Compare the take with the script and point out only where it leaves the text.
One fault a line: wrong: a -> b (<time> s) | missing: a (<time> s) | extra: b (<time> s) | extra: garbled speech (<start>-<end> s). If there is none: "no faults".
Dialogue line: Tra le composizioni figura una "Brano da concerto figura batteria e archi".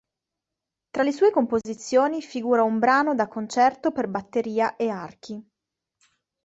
extra: sue (1.1 s)
wrong: una -> un (2.6 s)
wrong: figura -> per (3.9 s)